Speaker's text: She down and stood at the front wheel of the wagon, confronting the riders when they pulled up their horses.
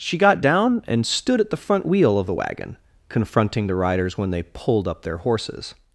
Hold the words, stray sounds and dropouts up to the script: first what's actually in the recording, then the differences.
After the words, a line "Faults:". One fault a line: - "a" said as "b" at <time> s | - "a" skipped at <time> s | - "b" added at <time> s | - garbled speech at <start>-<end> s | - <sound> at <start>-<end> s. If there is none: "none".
She got down and stood at the front wheel of the wagon, confronting the riders when they pulled up their horses.
Faults:
- "got" added at 0.2 s